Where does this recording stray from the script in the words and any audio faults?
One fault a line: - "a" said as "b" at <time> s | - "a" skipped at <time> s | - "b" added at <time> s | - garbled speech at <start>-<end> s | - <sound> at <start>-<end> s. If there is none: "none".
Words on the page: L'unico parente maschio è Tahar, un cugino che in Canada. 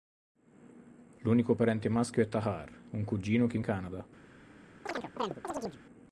- chirp at 4.9-5.8 s